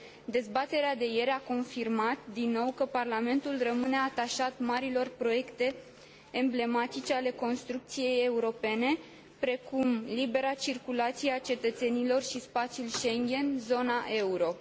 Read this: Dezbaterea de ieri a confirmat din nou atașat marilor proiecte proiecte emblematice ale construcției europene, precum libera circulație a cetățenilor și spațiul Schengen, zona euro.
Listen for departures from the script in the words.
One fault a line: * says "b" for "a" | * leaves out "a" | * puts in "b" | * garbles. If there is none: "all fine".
* puts in "că Parlamentul rămâne"
* leaves out "proiecte"